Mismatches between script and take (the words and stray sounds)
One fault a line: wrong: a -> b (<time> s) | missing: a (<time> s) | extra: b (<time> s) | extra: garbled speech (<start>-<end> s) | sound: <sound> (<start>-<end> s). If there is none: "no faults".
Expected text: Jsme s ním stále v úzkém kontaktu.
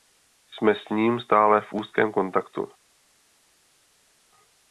no faults